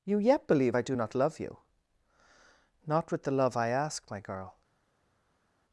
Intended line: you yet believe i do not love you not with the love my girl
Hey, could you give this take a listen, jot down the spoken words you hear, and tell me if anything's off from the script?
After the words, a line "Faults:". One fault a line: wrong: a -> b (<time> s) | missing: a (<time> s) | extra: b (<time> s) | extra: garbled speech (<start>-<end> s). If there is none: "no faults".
you yet believe i do not love you not with the love i ask my girl
Faults:
extra: i ask (3.6 s)